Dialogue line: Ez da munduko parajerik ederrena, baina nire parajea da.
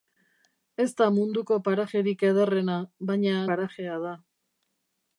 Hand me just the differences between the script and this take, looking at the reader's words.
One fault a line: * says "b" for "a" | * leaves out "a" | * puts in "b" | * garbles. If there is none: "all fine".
* leaves out "nire"